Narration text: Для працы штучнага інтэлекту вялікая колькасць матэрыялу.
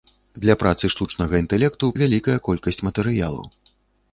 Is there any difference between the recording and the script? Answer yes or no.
no